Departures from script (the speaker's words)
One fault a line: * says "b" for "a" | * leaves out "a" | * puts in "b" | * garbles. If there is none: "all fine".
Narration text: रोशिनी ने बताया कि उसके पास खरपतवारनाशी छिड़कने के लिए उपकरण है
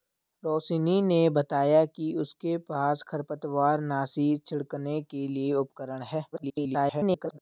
* garbles